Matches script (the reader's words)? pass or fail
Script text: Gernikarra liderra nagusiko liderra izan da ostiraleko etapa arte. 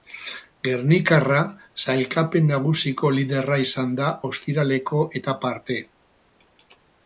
fail